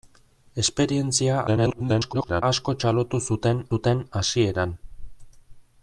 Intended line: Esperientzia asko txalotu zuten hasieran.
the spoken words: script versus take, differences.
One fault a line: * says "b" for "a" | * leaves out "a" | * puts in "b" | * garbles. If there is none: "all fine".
* garbles
* puts in "zuten"